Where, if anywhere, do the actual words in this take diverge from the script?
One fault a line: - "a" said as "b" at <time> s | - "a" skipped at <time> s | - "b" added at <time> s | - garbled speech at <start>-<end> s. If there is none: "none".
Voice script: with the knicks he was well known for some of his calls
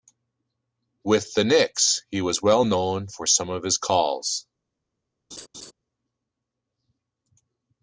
none